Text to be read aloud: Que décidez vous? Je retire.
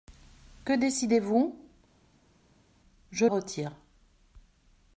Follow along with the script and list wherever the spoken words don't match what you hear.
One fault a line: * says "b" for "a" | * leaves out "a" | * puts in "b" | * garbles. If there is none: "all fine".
all fine